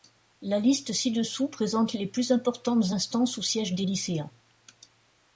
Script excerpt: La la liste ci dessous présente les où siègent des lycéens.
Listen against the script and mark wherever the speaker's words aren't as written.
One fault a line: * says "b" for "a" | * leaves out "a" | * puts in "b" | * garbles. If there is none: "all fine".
* leaves out "la"
* puts in "plus importantes instances"